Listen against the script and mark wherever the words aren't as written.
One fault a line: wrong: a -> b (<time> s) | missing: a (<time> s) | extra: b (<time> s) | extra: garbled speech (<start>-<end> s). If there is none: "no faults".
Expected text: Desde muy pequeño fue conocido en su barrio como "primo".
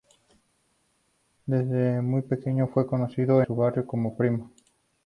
missing: en (3.4 s)